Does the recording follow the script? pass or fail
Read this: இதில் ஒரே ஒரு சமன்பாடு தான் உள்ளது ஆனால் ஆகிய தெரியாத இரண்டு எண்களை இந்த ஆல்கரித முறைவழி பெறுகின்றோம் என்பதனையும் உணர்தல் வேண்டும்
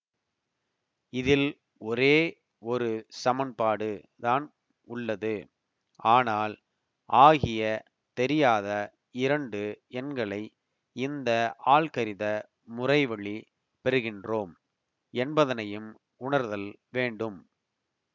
pass